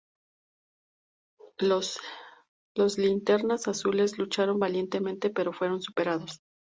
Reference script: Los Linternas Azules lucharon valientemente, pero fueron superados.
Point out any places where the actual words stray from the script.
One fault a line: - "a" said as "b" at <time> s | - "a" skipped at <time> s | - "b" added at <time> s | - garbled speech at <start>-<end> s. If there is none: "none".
none